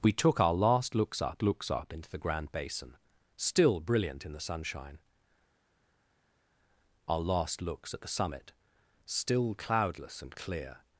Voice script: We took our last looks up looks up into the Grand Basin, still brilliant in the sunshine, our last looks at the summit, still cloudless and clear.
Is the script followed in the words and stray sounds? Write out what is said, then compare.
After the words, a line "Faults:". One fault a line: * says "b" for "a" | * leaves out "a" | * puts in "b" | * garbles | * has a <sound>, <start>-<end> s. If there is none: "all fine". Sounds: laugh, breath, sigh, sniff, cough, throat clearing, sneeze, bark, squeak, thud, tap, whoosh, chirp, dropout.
We took our last looks up looks up into the Grand Basin, still brilliant in the sunshine, our last looks at the summit, still cloudless and clear.
Faults:
all fine